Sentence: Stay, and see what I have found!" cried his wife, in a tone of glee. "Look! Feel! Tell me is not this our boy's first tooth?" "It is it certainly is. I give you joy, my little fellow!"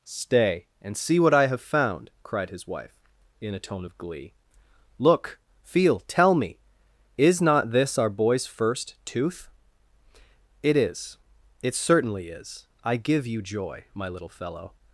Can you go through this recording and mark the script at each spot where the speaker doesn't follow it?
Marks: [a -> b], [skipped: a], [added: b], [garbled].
Stay, and see what I have found!" cried his wife, in a tone of glee. "Look! Feel! Tell me is not this our boy's first tooth?" "It is it certainly is. I give you joy, my little fellow!"